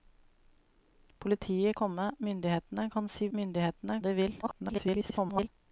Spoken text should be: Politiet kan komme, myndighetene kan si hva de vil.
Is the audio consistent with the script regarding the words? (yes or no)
no